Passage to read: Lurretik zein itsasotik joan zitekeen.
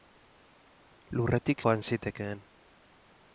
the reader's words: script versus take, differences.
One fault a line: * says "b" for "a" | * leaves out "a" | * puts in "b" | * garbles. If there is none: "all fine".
* leaves out "zein itsasotik"